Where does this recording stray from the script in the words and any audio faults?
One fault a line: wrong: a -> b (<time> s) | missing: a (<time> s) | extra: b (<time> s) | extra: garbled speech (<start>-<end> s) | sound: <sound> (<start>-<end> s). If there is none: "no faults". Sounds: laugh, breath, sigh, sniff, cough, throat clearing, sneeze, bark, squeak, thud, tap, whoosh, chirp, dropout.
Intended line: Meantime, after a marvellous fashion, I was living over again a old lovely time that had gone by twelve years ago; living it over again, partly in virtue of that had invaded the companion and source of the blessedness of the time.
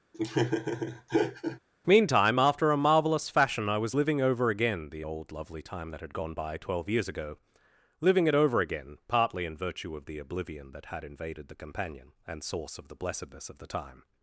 sound: laugh (0.1-1.6 s)
wrong: a -> the (4.9 s)
extra: the oblivion (10.0 s)